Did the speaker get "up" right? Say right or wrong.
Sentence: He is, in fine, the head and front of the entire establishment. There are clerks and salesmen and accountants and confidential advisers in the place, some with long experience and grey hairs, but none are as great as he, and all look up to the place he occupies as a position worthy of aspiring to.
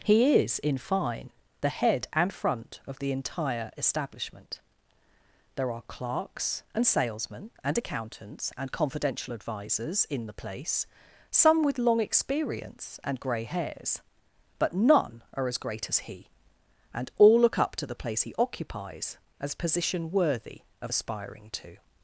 right